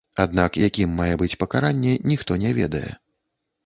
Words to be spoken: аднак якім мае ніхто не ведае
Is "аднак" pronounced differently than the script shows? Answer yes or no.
no